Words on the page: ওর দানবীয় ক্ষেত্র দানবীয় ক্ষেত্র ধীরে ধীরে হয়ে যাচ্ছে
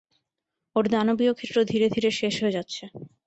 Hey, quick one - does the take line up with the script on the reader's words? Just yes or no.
no